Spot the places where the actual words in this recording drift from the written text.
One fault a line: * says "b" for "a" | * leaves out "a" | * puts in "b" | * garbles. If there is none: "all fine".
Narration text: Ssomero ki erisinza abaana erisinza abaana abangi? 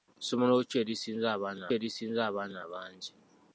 all fine